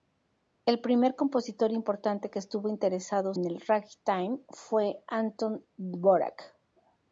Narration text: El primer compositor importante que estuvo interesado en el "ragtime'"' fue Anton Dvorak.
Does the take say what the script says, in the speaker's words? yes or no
yes